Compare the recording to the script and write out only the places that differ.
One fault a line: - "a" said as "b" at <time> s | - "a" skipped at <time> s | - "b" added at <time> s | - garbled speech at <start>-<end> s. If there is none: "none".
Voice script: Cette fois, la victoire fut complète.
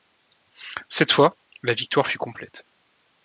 none